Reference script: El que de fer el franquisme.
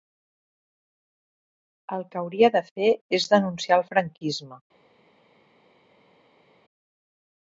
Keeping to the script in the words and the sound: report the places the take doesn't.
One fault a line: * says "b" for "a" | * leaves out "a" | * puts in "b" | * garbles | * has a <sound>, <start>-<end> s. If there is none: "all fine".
* puts in "hauria"
* puts in "és denunciar"